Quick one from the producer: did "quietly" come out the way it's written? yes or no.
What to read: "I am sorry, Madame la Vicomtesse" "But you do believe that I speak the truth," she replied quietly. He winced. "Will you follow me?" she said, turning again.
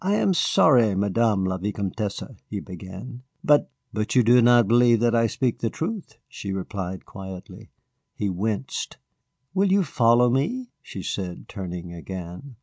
yes